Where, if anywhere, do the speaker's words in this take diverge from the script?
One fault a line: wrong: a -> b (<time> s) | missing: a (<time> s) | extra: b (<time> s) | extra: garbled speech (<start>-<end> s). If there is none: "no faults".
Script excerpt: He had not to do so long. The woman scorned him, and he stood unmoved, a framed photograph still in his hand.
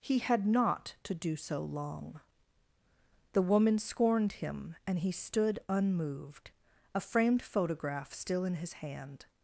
no faults